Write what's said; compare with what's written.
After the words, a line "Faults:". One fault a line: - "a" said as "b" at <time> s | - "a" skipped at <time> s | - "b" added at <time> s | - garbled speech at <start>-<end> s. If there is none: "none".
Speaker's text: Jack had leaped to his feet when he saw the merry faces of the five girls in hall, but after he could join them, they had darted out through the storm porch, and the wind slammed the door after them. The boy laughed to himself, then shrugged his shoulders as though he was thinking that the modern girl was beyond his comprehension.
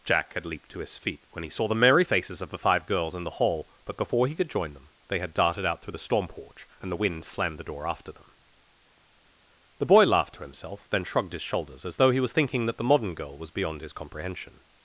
Jack had leaped to his feet when he saw the merry faces of the five girls in the hall, but before he could join them, they had darted out through the storm porch, and the wind slammed the door after them. The boy laughed to himself, then shrugged his shoulders as though he was thinking that the modern girl was beyond his comprehension.
Faults:
- "the" added at 3.2 s
- "after" said as "before" at 4.0 s